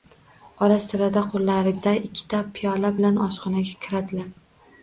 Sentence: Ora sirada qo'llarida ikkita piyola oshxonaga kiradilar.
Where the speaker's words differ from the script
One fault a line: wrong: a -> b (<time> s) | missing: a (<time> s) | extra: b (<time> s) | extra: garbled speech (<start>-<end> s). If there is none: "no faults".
extra: bilan (3.0 s)